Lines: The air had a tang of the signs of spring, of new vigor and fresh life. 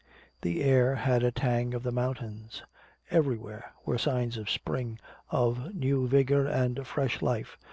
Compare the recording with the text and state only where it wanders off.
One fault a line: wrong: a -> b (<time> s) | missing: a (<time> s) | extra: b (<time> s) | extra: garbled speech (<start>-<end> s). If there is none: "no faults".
extra: mountains Everywhere were (1.9 s)